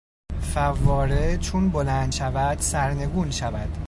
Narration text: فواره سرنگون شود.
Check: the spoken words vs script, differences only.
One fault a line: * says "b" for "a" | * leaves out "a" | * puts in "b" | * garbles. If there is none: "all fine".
* puts in "چون بلند شود"